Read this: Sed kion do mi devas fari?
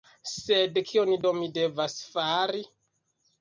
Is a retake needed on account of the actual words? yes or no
no